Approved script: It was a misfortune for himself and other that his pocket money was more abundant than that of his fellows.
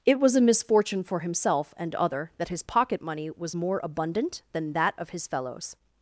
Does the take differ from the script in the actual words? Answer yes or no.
no